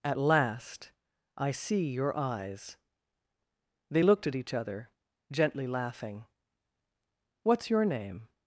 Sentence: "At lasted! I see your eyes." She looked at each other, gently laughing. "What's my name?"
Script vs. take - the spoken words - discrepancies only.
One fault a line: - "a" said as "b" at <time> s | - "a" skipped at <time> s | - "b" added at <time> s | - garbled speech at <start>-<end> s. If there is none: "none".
- "lasted" said as "last" at 0.2 s
- "She" said as "They" at 3.9 s
- "my" said as "your" at 7.7 s